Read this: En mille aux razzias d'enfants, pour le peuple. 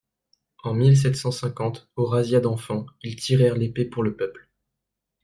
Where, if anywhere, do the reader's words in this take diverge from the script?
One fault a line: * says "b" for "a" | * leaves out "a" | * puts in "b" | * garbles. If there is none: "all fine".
* puts in "sept cent cinquante"
* puts in "ils tirèrent l'épée"